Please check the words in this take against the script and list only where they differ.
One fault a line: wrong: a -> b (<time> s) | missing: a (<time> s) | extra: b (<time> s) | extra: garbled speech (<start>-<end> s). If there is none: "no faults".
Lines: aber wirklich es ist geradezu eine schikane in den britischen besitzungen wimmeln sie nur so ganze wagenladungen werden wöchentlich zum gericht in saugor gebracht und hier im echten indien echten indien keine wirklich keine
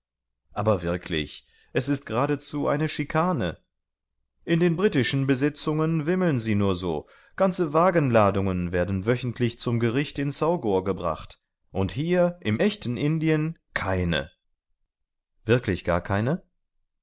missing: echten indien (13.6 s)
extra: gar (15.8 s)